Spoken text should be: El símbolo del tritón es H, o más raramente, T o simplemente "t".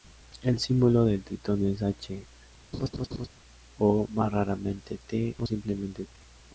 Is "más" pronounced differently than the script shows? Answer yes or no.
no